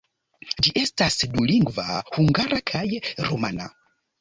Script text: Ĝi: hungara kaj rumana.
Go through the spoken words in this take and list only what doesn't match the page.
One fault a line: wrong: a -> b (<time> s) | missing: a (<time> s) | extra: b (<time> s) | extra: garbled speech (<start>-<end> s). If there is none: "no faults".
extra: estas dulingva (0.8 s)